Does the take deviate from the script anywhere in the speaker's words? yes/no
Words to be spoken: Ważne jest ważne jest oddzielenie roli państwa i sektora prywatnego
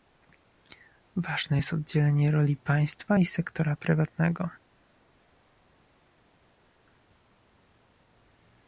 yes